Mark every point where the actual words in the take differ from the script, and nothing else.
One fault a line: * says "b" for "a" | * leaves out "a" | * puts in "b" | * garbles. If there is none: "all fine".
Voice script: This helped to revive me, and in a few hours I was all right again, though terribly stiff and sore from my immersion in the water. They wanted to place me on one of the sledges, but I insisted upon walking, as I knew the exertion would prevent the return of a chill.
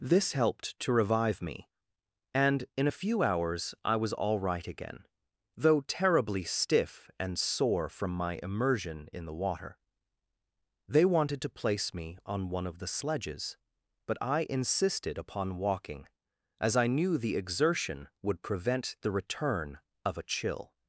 all fine